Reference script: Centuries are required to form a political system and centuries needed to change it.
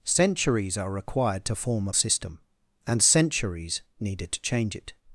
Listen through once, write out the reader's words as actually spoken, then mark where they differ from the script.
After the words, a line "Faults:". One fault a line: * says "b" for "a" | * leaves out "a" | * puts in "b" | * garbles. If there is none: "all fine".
Centuries are required to form a system and centuries needed to change it.
Faults:
* leaves out "political"